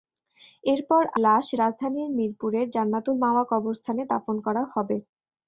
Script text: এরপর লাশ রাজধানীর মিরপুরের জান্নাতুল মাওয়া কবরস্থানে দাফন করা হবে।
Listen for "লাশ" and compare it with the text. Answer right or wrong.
right